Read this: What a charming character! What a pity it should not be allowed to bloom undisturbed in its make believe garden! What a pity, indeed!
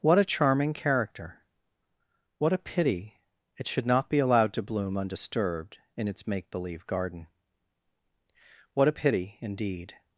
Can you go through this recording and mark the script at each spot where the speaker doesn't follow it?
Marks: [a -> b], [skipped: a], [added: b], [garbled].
What a charming character! What a pity it should not be allowed to bloom undisturbed in its make believe garden! What a pity, indeed!